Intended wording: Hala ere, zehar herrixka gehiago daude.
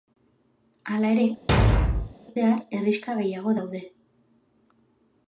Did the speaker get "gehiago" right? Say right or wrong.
right